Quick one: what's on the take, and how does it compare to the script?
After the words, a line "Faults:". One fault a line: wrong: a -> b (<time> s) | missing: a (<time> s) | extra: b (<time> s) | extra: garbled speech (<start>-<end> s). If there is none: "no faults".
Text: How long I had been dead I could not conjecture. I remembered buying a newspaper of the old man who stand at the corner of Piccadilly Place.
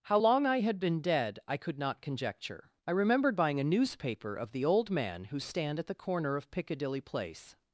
How long I had been dead I could not conjecture. I remembered buying a newspaper of the old man who stand at the corner of Piccadilly Place.
Faults:
no faults